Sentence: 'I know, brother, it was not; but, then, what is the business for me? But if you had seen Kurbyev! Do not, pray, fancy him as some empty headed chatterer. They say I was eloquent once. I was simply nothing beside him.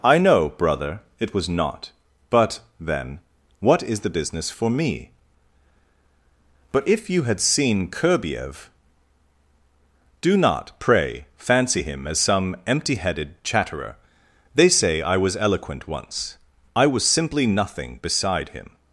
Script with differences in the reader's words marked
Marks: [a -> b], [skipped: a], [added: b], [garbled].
'I know, brother, it was not; but, then, what is the business for me? But if you had seen Kurbyev! Do not, pray, fancy him as some empty headed chatterer. They say I was eloquent once. I was simply nothing beside him.